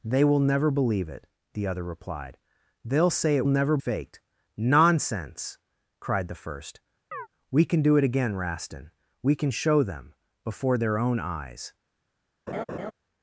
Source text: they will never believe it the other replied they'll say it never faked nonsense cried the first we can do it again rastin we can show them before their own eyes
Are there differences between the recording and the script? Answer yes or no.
no